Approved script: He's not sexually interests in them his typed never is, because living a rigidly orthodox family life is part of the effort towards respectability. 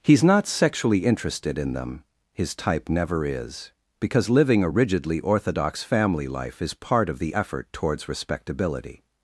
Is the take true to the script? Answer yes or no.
no